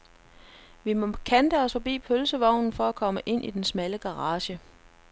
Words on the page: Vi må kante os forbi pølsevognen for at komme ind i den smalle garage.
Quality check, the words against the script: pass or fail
pass